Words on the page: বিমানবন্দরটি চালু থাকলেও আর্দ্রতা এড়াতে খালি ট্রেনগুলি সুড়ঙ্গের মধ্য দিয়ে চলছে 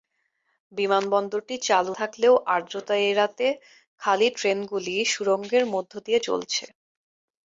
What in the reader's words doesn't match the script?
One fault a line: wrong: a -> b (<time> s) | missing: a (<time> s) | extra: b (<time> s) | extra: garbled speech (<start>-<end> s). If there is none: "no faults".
no faults